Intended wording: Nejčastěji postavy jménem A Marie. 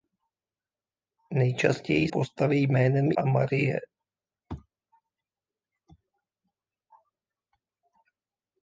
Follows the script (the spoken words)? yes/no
yes